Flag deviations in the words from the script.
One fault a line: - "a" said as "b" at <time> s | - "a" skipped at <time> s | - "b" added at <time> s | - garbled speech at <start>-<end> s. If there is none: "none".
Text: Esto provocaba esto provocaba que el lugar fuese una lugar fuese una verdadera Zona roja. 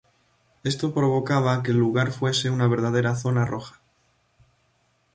- "esto provocaba" skipped at 1.6 s
- "lugar fuese una" skipped at 2.7 s